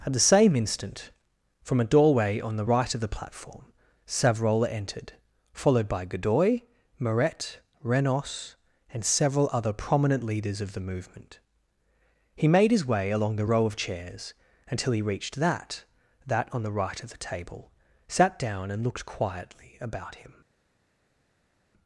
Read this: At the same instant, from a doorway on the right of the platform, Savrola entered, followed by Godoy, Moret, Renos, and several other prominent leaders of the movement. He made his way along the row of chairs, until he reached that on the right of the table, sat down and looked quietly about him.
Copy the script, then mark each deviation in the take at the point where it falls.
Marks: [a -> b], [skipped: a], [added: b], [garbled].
At the same instant, from a doorway on the right of the platform, Savrola entered, followed by Godoy, Moret, Renos, and several other prominent leaders of the movement. He made his way along the row of chairs, until he reached that [added: that] on the right of the table, sat down and looked quietly about him.